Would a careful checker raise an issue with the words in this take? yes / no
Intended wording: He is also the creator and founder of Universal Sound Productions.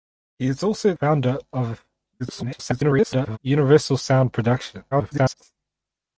yes